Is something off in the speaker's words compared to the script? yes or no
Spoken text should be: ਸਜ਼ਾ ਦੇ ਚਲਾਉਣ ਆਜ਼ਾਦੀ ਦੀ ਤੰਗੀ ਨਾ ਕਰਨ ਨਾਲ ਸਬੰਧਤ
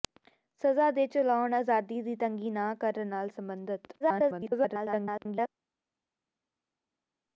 yes